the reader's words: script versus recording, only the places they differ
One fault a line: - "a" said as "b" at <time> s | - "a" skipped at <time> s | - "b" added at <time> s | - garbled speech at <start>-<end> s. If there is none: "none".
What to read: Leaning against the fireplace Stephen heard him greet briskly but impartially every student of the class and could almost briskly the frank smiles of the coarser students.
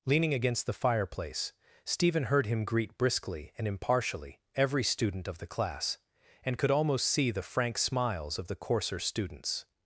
- "but" said as "and" at 3.6 s
- "briskly" said as "see" at 7.0 s